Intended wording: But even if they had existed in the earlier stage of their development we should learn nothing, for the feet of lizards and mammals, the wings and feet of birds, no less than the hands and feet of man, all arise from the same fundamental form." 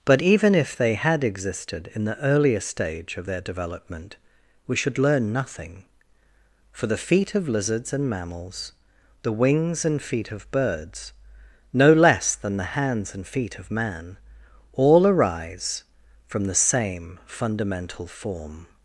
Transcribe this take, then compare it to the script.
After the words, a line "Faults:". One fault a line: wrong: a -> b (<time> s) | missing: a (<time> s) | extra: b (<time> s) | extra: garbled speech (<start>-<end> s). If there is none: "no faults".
But even if they had existed in the earlier stage of their development we should learn nothing, for the feet of lizards and mammals, the wings and feet of birds, no less than the hands and feet of man, all arise from the same fundamental form."
Faults:
no faults